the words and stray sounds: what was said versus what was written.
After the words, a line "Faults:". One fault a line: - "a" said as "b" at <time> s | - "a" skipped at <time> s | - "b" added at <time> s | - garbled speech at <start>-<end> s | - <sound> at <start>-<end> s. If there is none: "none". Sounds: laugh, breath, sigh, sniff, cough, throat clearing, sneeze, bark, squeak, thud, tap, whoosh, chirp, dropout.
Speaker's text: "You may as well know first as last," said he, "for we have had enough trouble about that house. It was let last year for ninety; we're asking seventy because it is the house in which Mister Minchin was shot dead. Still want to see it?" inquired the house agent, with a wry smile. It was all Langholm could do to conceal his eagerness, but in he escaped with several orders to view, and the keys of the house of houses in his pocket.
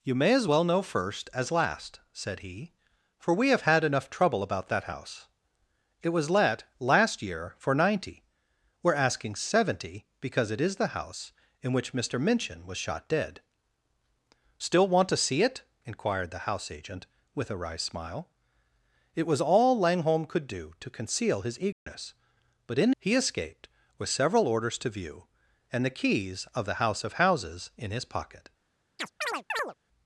"You may as well know first as last," said he, "for we have had enough trouble about that house. It was let last year for ninety; we're asking seventy because it is the house in which Mister Minchin was shot dead. Still want to see it?" inquired the house agent, with a wry smile. It was all Langholm could do to conceal his eagerness, but in he escaped with several orders to view, and the keys of the house of houses in his pocket.
Faults:
- dropout at 21.7-21.9 s
- chirp at 29.0-29.7 s